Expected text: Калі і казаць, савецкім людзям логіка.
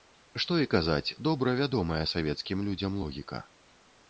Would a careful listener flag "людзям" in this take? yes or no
no